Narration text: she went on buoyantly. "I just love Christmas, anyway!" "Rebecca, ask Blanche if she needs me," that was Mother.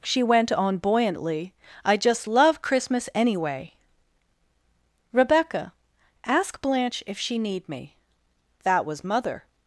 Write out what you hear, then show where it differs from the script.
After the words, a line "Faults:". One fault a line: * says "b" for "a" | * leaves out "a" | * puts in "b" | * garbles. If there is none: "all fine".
she went on buoyantly. "I just love Christmas, anyway!" "Rebecca, ask Blanche if she need me," that was Mother.
Faults:
* says "need" for "needs"